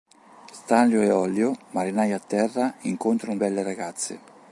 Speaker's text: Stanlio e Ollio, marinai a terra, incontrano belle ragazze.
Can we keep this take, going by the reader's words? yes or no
yes